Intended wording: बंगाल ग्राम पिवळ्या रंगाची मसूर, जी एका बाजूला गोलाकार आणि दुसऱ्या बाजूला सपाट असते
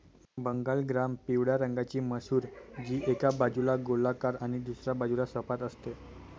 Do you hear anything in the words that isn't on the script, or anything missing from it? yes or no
no